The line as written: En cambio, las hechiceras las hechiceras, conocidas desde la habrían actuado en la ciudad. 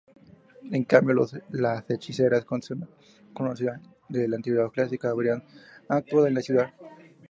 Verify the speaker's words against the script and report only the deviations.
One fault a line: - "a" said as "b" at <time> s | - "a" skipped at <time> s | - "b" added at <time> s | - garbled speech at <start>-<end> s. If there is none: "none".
- "las hechiceras" skipped at 2.4 s
- "antigüedad clásica" added at 4.4 s